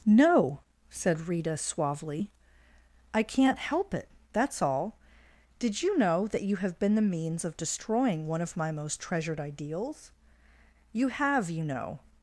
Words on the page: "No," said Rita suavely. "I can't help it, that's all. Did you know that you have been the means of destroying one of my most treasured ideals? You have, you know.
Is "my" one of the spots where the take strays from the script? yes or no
no